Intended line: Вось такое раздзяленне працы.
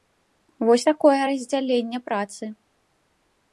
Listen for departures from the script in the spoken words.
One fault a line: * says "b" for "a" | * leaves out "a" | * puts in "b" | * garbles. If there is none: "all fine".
all fine